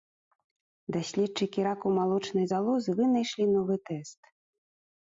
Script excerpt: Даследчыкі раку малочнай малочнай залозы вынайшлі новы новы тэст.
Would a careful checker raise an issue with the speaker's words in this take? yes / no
yes